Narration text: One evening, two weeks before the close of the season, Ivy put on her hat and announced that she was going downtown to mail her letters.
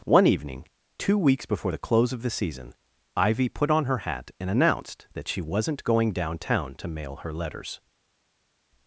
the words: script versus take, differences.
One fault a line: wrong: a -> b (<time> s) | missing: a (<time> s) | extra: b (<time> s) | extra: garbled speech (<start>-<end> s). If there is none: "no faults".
wrong: was -> wasn't (5.4 s)